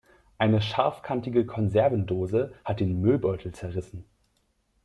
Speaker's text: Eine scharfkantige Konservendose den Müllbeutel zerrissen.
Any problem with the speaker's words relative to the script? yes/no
yes